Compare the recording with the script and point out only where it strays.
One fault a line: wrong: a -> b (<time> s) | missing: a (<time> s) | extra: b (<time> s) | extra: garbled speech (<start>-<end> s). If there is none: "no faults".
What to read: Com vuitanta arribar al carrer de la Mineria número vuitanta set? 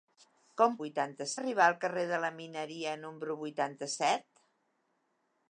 no faults